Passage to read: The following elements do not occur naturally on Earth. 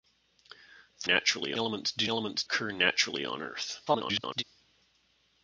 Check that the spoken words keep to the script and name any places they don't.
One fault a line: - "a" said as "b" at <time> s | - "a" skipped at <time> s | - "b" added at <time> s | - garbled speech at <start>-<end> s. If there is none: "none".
- "following" said as "naturally" at 1.0 s
- "not" said as "elements" at 2.1 s
- garbled speech at 3.9-4.4 s